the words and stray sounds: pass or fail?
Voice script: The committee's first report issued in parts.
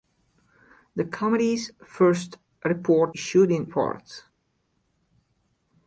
pass